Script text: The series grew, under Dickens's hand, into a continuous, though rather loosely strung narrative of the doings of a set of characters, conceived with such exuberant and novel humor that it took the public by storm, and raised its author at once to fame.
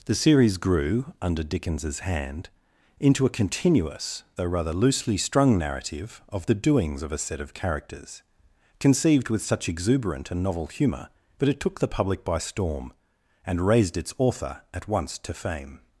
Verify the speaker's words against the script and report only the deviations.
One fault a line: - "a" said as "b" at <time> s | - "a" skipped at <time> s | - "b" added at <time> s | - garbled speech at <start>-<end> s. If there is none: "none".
- "humor that" said as "humour but" at 10.7 s